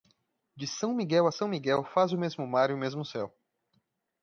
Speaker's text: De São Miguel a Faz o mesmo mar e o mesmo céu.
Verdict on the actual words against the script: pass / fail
fail